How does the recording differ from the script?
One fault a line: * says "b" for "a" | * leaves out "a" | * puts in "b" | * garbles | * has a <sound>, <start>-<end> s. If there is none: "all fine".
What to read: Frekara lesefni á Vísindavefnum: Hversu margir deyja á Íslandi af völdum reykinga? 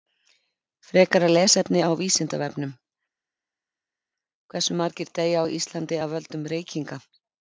all fine